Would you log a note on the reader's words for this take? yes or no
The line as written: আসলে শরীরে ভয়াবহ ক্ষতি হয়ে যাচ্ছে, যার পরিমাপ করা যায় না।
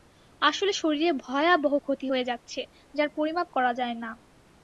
no